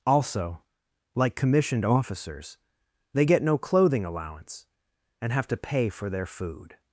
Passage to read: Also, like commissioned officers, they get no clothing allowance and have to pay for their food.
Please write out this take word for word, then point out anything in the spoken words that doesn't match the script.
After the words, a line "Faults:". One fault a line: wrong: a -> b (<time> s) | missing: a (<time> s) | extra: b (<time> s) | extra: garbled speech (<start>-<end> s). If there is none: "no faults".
Also, like commissioned officers, they get no clothing allowance and have to pay for their food.
Faults:
no faults